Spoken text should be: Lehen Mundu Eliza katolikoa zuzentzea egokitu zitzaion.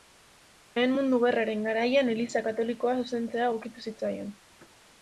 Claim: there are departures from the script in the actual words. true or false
true